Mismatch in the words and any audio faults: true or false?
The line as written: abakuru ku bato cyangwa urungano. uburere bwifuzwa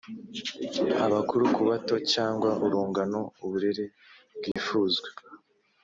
true